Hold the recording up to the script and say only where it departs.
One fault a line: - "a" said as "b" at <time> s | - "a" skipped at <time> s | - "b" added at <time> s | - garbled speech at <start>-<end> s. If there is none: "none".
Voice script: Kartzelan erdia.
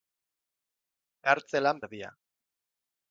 none